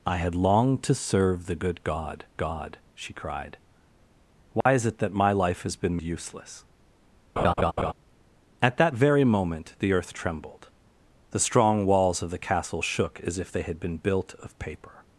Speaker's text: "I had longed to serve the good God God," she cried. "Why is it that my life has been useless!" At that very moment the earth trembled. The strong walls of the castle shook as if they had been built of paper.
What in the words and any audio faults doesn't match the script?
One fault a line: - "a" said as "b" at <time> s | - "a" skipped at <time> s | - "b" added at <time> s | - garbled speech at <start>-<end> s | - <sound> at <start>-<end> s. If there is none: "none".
- dropout at 4.6-4.7 s
- laugh at 7.4-7.9 s